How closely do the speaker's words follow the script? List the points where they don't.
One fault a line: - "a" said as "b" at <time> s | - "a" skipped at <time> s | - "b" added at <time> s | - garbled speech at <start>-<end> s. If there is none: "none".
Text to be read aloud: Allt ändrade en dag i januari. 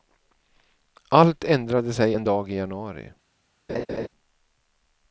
- "sig" added at 1.9 s